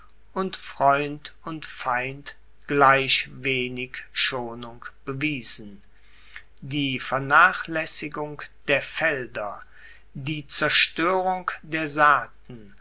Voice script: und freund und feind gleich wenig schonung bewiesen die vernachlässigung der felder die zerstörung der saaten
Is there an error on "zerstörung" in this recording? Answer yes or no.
no